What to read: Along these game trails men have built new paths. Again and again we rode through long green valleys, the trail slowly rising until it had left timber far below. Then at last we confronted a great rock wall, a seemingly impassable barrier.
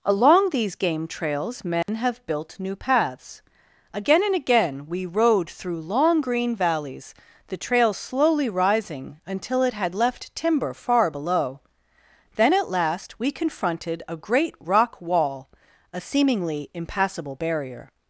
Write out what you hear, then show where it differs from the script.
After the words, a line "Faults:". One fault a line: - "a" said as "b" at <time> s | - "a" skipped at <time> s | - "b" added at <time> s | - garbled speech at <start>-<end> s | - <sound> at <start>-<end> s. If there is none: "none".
Along these game trails men have built new paths. Again and again we rode through long green valleys, the trail slowly rising until it had left timber far below. Then at last we confronted a great rock wall, a seemingly impassable barrier.
Faults:
- dropout at 1.8-1.9 s